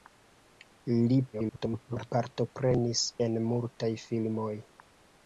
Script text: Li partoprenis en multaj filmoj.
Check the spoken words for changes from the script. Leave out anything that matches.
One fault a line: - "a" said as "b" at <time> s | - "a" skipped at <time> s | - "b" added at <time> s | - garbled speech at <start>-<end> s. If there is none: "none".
- garbled speech at 1.3-2.1 s